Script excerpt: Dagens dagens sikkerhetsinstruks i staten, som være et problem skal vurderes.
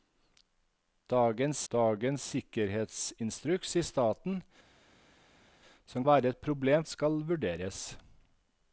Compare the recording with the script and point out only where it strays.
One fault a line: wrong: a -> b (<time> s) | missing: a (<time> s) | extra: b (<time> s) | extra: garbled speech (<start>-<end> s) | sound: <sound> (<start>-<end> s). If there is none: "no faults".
no faults